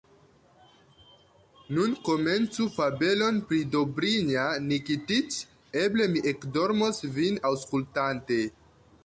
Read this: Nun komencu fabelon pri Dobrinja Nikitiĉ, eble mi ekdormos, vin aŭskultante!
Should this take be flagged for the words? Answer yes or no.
no